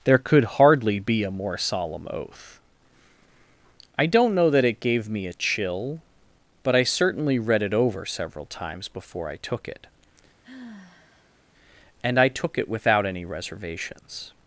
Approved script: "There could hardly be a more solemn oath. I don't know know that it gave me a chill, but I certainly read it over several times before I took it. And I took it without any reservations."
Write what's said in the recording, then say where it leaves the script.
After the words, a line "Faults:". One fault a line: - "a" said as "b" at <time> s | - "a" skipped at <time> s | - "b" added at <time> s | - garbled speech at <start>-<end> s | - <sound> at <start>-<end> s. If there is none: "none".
"There could hardly be a more solemn oath. I don't know that it gave me a chill, but I certainly read it over several times before I took it. And I took it without any reservations."
Faults:
- "know" skipped at 4.5 s
- sigh at 10.4-11.4 s